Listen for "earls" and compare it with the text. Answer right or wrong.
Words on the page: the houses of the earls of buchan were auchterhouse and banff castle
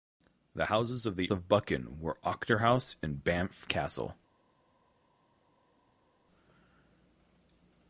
wrong